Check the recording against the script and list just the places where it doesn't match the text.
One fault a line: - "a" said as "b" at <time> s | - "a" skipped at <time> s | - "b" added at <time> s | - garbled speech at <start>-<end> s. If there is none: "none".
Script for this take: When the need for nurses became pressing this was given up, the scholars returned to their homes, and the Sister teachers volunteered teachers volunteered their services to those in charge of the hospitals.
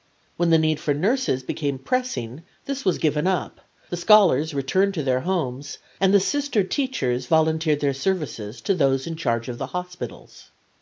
- "teachers volunteered" skipped at 7.8 s